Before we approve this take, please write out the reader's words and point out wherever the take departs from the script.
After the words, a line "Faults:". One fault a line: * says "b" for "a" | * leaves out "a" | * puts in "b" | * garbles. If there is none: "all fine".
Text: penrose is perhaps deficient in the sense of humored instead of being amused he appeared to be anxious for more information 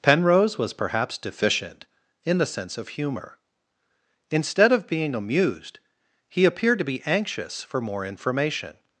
penrose was perhaps deficient in the sense of humor instead of being amused he appeared to be anxious for more information
Faults:
* says "was" for "is"
* says "humor" for "humored"